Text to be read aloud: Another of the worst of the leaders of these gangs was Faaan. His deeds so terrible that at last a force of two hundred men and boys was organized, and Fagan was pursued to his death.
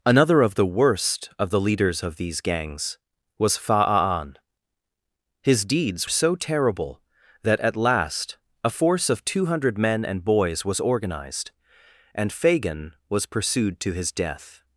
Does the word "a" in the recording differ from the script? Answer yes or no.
no